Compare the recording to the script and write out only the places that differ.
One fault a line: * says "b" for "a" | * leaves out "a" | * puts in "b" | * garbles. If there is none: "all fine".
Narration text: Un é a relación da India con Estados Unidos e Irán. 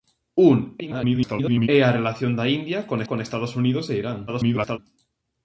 * garbles
* puts in "con"
* garbles